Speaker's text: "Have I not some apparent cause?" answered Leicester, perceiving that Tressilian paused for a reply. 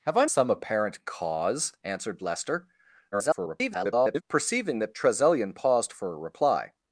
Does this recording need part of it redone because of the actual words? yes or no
yes